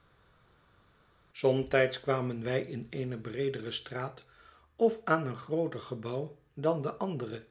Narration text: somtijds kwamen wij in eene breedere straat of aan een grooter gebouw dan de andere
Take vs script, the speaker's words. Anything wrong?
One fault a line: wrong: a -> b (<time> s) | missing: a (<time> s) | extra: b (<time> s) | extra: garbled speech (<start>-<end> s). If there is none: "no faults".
no faults